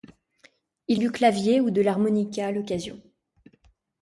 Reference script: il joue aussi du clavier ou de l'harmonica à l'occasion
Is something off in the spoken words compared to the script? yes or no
yes